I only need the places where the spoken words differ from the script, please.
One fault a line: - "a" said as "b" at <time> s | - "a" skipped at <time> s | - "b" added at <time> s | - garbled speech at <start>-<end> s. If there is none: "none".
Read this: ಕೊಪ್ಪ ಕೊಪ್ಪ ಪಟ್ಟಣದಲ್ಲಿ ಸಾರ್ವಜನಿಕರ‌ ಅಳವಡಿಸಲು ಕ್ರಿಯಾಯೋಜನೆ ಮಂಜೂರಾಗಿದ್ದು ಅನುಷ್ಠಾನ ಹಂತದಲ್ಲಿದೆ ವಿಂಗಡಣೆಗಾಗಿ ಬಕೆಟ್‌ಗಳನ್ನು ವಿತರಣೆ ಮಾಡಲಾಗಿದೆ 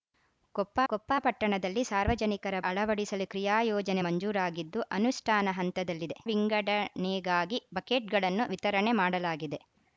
none